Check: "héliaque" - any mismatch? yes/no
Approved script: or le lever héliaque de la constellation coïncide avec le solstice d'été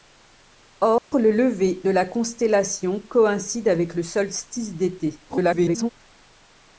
yes